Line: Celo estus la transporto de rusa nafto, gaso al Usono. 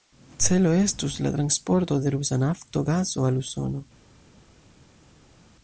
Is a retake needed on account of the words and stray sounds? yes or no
no